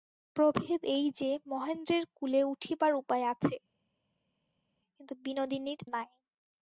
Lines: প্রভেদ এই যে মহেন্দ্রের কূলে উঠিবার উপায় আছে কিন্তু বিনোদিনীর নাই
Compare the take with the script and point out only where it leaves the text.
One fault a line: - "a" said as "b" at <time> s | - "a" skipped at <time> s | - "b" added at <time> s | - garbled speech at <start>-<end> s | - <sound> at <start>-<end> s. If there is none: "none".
none